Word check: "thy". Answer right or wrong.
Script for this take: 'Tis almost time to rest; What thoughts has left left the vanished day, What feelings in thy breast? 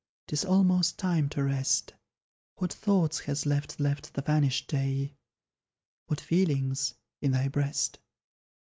right